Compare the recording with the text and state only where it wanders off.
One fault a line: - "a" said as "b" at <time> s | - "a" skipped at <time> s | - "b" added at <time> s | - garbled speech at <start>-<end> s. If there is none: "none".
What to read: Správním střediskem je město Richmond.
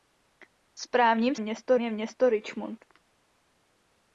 - "střediskem" said as "město" at 1.4 s